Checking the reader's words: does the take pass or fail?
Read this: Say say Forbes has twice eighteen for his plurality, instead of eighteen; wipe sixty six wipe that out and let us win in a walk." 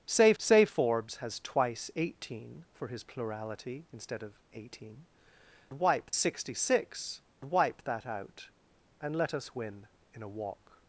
pass